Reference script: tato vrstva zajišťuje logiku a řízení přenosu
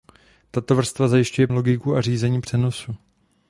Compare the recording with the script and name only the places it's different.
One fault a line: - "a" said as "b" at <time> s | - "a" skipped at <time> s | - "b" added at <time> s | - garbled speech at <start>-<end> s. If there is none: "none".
none